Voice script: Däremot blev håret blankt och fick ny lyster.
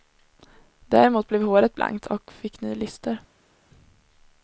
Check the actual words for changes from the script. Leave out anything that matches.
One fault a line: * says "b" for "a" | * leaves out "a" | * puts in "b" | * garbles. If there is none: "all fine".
all fine